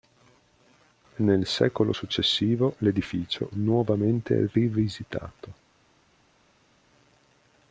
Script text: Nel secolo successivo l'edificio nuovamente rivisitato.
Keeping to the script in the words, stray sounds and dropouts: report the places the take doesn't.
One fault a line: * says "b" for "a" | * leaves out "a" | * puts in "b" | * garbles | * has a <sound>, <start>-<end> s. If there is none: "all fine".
all fine